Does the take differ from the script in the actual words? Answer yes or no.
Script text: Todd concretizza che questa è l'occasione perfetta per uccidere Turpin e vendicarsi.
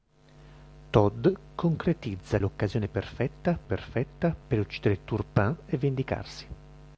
yes